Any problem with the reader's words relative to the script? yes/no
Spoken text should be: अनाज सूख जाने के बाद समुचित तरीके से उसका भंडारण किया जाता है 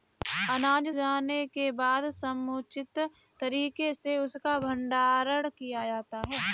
yes